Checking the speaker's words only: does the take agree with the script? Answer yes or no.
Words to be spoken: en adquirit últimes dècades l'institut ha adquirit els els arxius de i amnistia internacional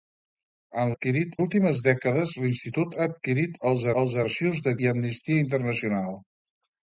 yes